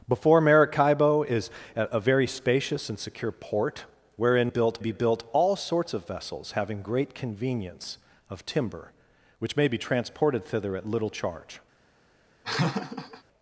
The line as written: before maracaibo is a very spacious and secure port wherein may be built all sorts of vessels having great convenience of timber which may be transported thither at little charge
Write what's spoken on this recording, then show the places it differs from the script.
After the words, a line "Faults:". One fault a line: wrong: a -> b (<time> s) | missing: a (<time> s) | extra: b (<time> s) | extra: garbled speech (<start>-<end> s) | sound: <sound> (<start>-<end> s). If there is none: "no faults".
before maracaibo is a very spacious and secure port wherein built be built all sorts of vessels having great convenience of timber which may be transported thither at little charge
Faults:
wrong: may -> built (4.5 s)
sound: laugh (12.4-13.2 s)